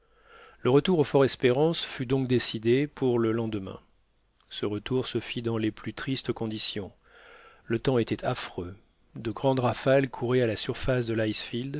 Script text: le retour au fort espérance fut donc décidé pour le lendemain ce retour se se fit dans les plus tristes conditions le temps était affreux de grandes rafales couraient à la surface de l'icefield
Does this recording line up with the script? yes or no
no